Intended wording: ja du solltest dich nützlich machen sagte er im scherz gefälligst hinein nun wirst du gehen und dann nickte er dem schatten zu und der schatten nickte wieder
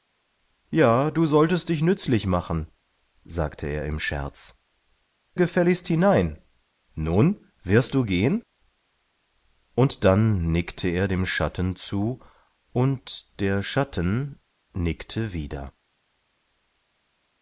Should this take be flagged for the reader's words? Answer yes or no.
no